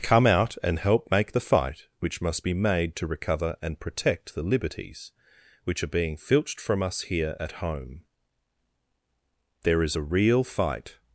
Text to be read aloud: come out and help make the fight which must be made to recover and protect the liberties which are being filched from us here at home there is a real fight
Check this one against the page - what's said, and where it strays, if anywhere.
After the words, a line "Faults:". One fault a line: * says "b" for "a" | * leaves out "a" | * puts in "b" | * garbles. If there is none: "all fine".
come out and help make the fight which must be made to recover and protect the liberties which are being filched from us here at home there is a real fight
Faults:
all fine